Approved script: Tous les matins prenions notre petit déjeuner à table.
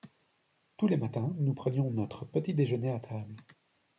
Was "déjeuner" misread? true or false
false